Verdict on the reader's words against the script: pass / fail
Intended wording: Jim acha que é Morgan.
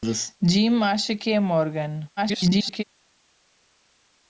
fail